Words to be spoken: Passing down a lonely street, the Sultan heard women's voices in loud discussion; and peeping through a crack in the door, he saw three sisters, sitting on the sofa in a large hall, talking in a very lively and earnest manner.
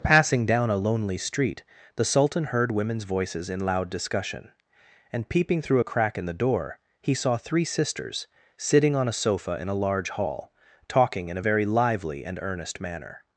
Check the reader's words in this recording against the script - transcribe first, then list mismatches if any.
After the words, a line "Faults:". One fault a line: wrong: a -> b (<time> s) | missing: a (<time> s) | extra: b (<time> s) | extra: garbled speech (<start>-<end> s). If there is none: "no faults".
Passing down a lonely street, the Sultan heard women's voices in loud discussion; and peeping through a crack in the door, he saw three sisters, sitting on a sofa in a large hall, talking in a very lively and earnest manner.
Faults:
wrong: the -> a (9.1 s)